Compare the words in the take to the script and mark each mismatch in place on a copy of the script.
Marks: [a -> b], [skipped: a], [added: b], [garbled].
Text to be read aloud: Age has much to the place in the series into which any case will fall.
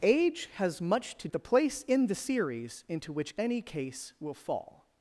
Age has much to the place in the series into which any case will fall.